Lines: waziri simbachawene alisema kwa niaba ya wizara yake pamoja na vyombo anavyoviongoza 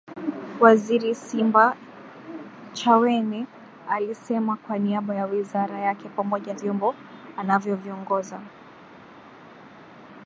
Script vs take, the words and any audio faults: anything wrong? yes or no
yes